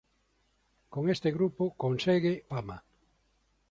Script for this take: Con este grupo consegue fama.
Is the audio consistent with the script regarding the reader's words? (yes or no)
yes